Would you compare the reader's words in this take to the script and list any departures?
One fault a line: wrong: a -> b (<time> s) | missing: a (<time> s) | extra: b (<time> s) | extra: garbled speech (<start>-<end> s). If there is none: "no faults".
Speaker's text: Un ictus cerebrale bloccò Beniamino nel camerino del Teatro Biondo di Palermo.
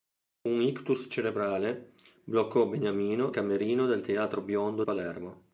missing: nel (3.4 s)
missing: di (4.8 s)